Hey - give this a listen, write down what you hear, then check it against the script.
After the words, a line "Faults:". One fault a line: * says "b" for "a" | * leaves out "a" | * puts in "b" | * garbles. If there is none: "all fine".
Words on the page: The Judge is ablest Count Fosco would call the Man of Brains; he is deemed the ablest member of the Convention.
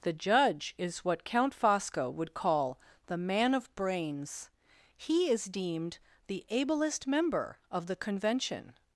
The Judge is what Count Fosco would call the Man of Brains; he is deemed the ablest member of the Convention.
Faults:
* says "what" for "ablest"